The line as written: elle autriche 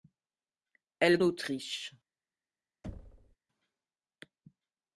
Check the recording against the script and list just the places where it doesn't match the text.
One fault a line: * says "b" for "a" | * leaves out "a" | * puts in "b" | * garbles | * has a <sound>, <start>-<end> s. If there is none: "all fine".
* has a thud, 2.8-3.4 s